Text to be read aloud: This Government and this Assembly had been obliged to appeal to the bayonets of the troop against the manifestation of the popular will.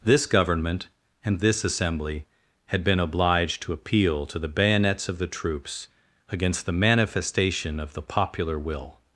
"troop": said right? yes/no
no